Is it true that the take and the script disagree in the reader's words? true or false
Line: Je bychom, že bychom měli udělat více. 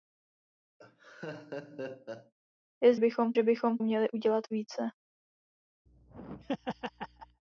false